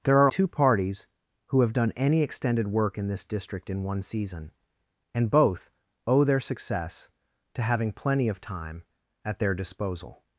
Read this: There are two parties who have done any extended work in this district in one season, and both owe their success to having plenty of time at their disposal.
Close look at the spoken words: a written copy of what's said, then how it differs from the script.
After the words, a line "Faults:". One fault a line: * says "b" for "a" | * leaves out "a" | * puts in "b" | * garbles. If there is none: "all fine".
There are two parties who have done any extended work in this district in one season, and both owe their success to having plenty of time at their disposal.
Faults:
all fine